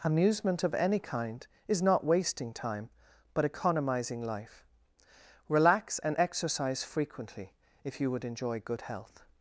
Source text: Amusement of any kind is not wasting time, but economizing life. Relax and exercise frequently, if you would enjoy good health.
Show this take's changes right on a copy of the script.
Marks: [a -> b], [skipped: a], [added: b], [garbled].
Amusement of any kind is not wasting time, but economizing life. Relax and exercise frequently, if you would enjoy good health.